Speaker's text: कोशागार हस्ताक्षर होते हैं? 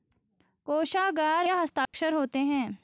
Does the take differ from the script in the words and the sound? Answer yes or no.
yes